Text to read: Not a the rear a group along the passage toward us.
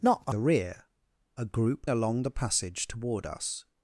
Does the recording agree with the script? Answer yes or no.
yes